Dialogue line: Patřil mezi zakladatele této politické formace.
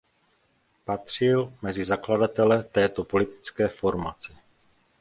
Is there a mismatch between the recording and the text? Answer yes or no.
no